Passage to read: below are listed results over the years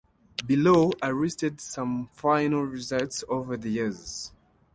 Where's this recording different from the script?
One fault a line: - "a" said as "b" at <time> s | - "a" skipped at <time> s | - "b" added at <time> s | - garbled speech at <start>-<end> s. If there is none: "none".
- "some final" added at 1.6 s